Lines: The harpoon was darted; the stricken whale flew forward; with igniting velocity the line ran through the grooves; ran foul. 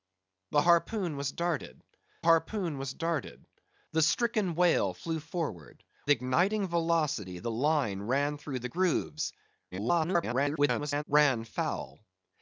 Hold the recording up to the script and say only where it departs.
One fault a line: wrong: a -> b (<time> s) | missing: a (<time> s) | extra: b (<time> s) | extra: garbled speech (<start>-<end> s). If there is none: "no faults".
extra: harpoon was darted (2.2 s)
missing: with (5.8 s)
extra: garbled speech (9.7-11.0 s)